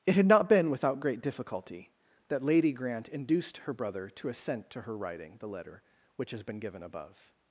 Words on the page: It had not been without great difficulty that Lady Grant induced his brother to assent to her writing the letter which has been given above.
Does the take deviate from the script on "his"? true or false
true